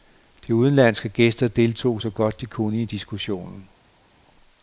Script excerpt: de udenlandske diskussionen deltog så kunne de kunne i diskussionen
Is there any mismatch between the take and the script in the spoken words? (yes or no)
yes